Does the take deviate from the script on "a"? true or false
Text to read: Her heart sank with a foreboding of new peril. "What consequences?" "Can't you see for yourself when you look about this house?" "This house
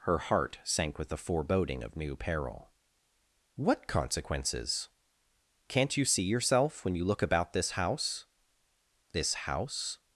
true